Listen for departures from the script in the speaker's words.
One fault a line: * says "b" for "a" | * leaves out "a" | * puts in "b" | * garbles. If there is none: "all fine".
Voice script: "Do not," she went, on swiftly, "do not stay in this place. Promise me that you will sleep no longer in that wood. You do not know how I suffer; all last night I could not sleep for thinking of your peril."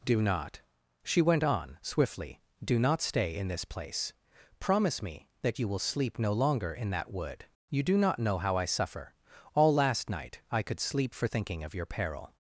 * leaves out "not"